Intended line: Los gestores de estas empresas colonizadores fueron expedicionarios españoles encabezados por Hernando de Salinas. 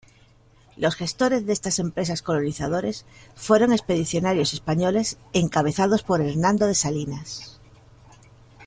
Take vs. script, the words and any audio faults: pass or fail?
pass